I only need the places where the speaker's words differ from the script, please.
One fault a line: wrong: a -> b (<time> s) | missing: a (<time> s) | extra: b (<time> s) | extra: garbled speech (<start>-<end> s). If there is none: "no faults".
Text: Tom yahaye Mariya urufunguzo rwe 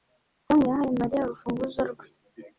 no faults